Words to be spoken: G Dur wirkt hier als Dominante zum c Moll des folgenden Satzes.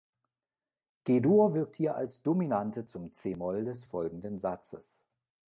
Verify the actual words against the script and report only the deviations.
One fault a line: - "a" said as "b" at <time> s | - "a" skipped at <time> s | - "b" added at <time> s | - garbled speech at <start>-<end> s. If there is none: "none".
none